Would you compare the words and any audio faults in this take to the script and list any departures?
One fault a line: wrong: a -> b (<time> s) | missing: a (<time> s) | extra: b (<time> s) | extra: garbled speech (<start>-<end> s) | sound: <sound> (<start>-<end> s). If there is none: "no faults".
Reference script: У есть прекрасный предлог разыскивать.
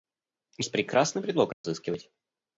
sound: dropout (1.5-1.6 s)